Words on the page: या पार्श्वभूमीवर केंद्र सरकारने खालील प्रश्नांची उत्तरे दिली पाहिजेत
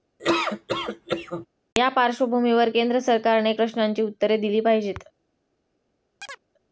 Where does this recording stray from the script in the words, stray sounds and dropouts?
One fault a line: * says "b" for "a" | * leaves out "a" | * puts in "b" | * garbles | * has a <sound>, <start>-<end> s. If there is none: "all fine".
* has a laugh, 0.2-1.5 s
* leaves out "खालील"
* has a chirp, 6.2-6.4 s